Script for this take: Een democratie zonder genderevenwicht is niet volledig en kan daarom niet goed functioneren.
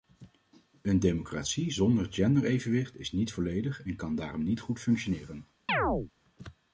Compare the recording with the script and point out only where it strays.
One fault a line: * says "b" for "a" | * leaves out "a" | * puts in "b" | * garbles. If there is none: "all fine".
all fine